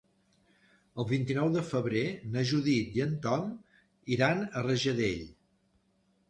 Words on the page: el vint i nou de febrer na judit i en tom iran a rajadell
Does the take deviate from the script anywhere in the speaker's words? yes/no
no